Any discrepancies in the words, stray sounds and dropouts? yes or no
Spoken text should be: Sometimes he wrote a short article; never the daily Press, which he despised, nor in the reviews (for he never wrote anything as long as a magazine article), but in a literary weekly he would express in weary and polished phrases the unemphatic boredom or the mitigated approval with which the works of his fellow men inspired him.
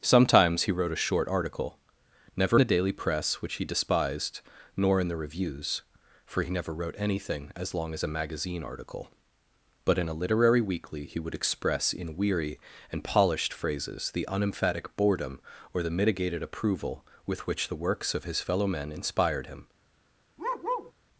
yes